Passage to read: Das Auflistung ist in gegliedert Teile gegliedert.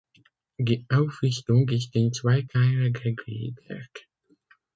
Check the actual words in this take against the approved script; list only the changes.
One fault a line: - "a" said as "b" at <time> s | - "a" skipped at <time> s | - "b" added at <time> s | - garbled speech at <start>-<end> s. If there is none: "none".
- "Das" said as "Die" at 0.6 s
- "gegliedert" said as "zwei" at 2.1 s